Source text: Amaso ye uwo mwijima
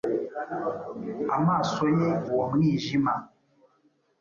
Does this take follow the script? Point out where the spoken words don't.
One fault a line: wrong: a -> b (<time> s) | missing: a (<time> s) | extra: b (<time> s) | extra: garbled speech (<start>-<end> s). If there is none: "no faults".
no faults